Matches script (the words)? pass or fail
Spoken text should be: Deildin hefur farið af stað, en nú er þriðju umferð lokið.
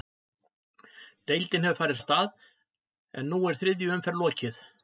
pass